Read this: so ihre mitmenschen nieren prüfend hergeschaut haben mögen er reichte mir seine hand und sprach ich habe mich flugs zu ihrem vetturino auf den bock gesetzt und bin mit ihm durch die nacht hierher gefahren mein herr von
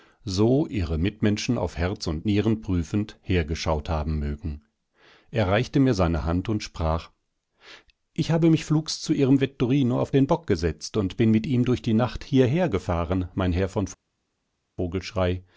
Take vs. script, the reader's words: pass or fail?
fail